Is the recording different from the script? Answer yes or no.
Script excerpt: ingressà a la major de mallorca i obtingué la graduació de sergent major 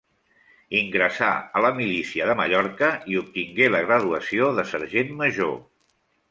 yes